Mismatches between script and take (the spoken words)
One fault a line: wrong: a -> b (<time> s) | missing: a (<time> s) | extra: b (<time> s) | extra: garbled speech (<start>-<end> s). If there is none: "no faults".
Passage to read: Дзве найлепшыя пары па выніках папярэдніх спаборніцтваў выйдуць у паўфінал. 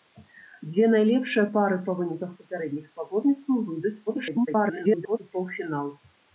extra: garbled speech (4.1-5.2 s)